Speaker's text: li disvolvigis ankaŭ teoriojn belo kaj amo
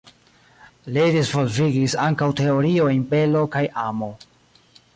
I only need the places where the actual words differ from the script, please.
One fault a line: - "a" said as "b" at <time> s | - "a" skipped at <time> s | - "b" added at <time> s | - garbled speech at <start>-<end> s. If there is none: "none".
none